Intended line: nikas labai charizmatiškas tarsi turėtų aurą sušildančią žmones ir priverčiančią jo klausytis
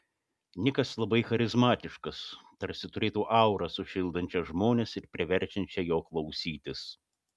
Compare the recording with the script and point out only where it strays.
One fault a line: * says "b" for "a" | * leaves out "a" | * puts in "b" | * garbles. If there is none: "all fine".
all fine